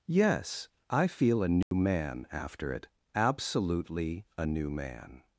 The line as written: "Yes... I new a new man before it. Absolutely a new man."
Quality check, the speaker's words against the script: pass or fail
fail